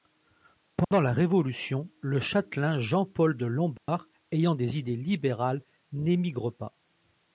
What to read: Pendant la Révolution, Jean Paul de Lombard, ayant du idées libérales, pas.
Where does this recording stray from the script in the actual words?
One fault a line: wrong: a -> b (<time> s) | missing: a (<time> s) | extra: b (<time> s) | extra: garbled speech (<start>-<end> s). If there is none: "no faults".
extra: le châtelain (2.0 s)
wrong: du -> des (4.5 s)
extra: n'émigre (5.9 s)